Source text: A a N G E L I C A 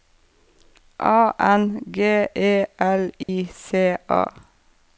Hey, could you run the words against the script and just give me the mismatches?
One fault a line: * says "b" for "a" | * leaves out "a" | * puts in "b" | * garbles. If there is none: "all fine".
* leaves out "a"